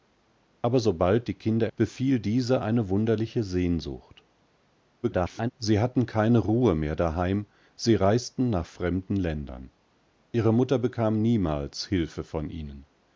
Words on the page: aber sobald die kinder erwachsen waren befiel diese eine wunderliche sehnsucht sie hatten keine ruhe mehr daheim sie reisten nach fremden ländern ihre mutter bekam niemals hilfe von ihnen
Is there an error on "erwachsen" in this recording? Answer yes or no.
yes